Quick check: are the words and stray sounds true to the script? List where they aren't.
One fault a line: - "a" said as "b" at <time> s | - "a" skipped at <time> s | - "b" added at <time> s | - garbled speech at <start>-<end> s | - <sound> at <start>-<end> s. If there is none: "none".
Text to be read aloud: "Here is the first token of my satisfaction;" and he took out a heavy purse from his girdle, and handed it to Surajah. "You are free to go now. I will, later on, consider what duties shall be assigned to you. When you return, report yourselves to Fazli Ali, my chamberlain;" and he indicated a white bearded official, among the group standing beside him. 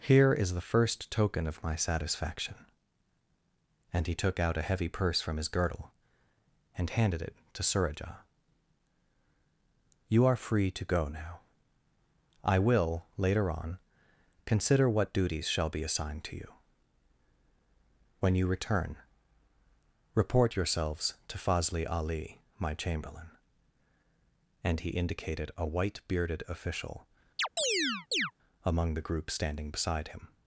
- chirp at 27.4-28.3 s